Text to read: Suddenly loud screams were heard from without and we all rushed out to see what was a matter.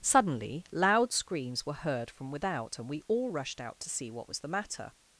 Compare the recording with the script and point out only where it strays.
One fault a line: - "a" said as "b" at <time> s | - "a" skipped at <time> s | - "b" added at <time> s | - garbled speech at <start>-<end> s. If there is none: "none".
- "a" said as "the" at 4.4 s